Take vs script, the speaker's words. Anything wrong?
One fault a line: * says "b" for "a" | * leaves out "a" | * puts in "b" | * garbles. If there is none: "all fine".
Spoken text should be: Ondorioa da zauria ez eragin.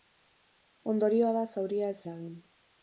all fine